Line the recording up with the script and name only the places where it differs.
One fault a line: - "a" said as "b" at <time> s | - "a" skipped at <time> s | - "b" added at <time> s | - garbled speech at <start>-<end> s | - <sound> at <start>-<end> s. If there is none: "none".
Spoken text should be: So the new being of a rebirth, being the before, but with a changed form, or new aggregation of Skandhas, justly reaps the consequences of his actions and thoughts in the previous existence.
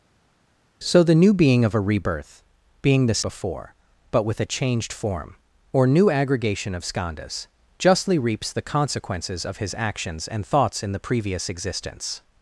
none